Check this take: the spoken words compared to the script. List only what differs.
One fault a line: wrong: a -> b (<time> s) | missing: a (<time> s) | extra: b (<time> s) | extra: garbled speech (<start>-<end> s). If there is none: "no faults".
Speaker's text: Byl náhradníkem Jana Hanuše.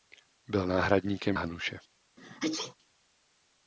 missing: Jana (1.4 s)